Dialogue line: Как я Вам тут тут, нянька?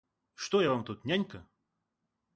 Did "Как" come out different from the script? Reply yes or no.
yes